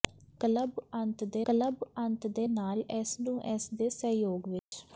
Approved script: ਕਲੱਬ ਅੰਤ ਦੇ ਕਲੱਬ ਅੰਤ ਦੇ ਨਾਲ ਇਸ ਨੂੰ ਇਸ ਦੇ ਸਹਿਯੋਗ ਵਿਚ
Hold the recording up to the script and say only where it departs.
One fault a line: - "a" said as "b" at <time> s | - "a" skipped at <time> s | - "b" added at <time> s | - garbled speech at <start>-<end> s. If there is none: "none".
none